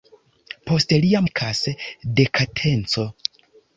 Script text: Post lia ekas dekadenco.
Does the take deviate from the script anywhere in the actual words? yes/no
no